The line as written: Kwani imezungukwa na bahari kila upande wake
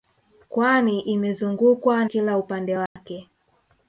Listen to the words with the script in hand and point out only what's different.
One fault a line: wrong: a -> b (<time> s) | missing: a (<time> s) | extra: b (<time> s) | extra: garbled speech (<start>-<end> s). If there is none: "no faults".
missing: na bahari (2.0 s)